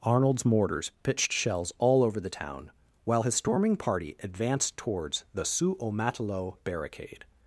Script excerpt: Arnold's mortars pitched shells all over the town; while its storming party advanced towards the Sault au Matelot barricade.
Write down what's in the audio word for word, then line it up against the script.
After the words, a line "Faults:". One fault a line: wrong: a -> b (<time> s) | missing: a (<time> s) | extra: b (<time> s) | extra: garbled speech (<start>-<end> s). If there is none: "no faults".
Arnold's mortars pitched shells all over the town; while his storming party advanced towards the Sault au Matelot barricade.
Faults:
wrong: its -> his (3.2 s)